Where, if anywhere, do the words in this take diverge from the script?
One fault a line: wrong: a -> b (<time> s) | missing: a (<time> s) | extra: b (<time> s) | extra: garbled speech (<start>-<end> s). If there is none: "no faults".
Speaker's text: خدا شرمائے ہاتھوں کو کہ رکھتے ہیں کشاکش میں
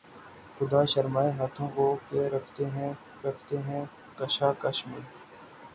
extra: رکھتے ہیں (3.3 s)